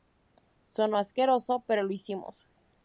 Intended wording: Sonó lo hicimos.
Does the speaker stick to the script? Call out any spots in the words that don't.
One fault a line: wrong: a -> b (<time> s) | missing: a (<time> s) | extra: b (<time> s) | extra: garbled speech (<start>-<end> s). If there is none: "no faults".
extra: asqueroso pero (1.0 s)